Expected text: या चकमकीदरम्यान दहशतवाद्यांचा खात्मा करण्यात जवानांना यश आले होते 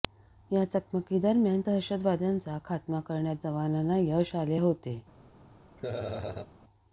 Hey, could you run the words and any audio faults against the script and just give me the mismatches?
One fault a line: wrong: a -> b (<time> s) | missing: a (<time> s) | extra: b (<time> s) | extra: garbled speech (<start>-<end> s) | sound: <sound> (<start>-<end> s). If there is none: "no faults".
sound: laugh (5.8-6.5 s)